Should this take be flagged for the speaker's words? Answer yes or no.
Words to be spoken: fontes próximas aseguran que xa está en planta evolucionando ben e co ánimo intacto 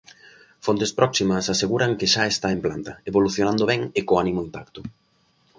no